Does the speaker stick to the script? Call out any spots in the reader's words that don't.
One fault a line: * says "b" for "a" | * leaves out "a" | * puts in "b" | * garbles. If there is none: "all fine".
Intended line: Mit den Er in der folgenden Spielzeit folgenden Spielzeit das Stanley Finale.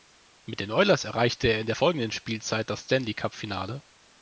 * puts in "Oilers erreichte"
* leaves out "folgenden Spielzeit"
* puts in "Cup"